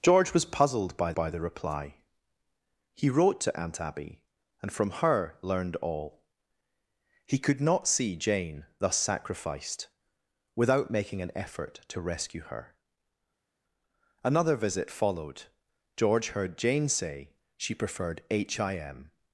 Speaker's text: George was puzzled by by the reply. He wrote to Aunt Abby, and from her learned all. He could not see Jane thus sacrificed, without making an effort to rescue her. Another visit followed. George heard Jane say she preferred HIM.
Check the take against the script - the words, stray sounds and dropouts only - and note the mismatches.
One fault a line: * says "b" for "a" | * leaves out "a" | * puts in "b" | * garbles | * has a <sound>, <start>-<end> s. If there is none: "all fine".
all fine